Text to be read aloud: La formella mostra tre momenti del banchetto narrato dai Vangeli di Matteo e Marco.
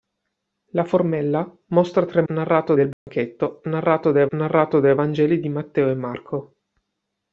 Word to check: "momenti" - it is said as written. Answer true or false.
false